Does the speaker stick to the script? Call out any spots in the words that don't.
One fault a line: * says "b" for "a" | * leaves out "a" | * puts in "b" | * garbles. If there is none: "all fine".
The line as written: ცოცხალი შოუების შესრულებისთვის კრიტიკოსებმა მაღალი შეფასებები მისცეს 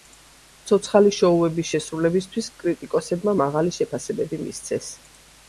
all fine